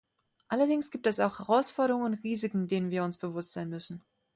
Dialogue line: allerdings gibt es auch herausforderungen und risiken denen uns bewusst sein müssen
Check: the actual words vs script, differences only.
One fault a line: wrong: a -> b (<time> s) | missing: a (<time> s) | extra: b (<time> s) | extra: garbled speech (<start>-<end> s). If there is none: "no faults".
extra: wir (2.9 s)